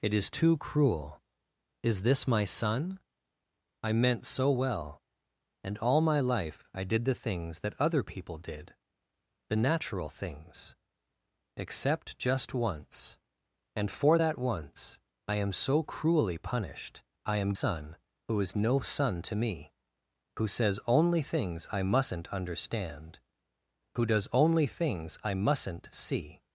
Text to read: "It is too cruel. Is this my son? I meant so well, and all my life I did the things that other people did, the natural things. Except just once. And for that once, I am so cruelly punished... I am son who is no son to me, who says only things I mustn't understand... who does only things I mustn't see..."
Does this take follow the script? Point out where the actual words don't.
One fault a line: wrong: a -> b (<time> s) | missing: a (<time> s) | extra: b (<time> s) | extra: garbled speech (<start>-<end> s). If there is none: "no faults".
no faults